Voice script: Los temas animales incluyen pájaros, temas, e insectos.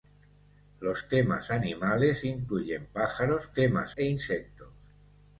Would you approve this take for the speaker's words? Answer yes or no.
yes